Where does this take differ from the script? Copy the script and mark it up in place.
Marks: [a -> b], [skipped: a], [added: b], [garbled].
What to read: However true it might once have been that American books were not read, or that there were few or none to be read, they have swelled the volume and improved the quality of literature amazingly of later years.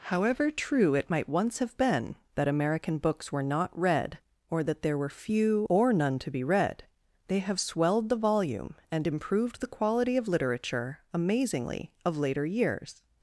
However true it might once have been that American books were not read, or that there were few or none to be read, they have swelled the volume and improved the quality of literature amazingly of later years.